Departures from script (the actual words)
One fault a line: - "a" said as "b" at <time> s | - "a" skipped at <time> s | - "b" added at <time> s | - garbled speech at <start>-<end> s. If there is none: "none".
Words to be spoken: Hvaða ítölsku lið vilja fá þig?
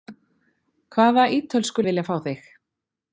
- "lið" skipped at 1.9 s